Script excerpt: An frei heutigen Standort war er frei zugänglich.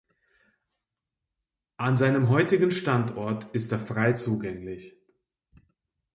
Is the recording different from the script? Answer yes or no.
yes